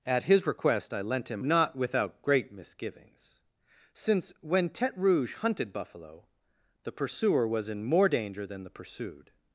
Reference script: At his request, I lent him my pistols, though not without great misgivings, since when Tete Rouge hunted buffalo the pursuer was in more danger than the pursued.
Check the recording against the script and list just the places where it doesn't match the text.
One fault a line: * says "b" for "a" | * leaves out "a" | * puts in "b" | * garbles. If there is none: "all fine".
* leaves out "my pistols though"